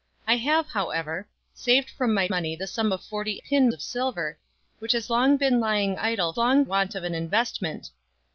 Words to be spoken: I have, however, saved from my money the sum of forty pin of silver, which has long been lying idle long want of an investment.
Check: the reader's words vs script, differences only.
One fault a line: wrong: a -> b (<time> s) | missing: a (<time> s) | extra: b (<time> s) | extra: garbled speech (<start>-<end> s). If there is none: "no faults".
no faults